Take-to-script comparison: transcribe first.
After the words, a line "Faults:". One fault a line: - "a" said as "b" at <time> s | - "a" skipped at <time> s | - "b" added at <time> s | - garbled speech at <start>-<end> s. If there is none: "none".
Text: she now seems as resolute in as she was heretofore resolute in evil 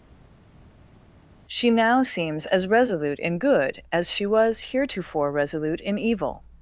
she now seems as resolute in good as she was heretofore resolute in evil
Faults:
- "good" added at 3.4 s